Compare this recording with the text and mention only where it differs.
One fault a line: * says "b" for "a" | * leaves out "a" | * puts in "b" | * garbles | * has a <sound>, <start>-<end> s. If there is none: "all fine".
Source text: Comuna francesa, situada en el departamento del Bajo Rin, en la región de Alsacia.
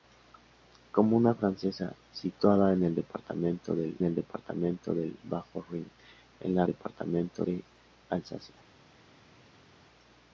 * puts in "el departamento del"
* says "departamento" for "región"